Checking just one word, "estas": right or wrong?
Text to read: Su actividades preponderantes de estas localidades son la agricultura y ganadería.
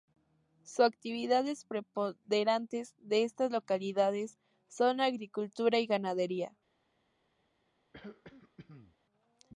right